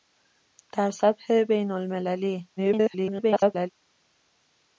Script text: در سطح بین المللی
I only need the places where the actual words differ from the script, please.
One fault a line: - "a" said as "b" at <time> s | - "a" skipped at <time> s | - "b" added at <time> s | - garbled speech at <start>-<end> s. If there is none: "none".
- garbled speech at 2.6-3.7 s